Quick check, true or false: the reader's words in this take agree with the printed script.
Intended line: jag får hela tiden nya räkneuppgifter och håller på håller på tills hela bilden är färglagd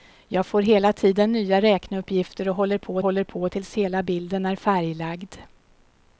true